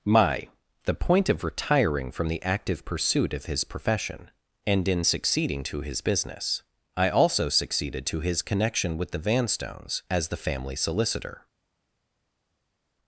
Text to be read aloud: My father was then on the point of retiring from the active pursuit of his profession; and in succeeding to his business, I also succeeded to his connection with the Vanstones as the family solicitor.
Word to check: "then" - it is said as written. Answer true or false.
false